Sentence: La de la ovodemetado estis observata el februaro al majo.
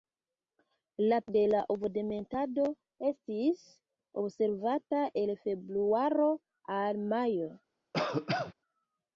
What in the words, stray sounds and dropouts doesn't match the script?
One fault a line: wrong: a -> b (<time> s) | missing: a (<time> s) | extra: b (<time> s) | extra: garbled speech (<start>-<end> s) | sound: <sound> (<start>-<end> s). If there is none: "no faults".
sound: cough (7.9-8.5 s)